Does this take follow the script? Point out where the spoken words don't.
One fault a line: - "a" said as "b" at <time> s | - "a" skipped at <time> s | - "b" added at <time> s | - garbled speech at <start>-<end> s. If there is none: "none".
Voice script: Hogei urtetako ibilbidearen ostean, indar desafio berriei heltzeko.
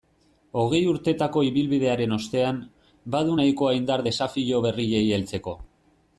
- "badu nahikoa" added at 3.2 s